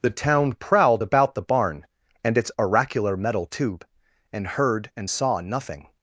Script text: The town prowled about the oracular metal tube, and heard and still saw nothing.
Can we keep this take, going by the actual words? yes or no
no